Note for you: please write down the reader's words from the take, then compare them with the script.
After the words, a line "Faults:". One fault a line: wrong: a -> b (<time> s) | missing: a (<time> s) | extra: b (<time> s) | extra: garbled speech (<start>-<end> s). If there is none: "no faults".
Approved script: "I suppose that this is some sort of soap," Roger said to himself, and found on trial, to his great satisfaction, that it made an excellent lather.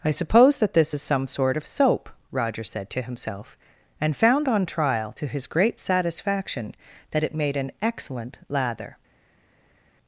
"I suppose that this is some sort of soap," Roger said to himself, and found on trial, to his great satisfaction, that it made an excellent lather.
Faults:
no faults